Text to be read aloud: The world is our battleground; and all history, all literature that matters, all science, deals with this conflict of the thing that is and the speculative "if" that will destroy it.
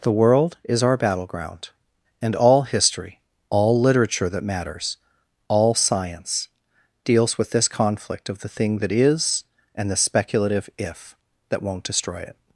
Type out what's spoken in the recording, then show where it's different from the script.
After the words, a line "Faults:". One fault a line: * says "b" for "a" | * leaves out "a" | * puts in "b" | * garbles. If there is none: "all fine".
The world is our battleground; and all history, all literature that matters, all science, deals with this conflict of the thing that is and the speculative "if" that won't destroy it.
Faults:
* says "won't" for "will"